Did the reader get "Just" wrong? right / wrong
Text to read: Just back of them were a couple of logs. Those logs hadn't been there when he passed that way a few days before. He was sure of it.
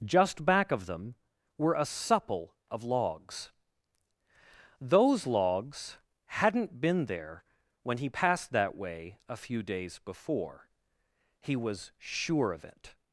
right